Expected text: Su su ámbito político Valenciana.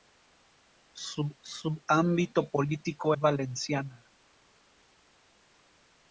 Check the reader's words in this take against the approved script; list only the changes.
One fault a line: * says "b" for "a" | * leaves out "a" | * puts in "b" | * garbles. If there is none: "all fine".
all fine